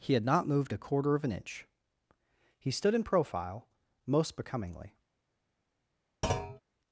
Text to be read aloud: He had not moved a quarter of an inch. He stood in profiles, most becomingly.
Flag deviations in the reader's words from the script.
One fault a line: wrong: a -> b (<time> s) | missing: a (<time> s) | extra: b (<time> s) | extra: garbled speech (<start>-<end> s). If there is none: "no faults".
wrong: profiles -> profile (3.0 s)